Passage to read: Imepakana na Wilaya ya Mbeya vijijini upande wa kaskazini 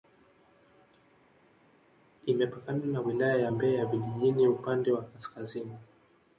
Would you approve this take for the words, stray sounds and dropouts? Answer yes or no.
yes